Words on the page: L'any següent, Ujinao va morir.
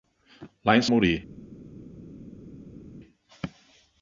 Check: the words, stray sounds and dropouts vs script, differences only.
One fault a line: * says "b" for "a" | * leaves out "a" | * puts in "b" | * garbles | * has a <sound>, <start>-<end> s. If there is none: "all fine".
* leaves out "següent Ujinao va"